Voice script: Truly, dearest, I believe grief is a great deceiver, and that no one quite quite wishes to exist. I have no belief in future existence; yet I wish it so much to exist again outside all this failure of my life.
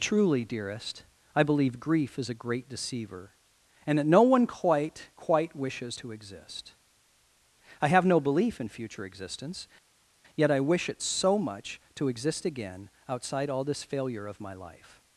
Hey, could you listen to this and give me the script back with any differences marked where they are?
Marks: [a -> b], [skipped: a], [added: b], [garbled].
Truly, dearest, I believe grief is a great deceiver, and that no one quite quite wishes to exist. I have no belief in future existence; yet I wish it so much to exist again outside all this failure of my life.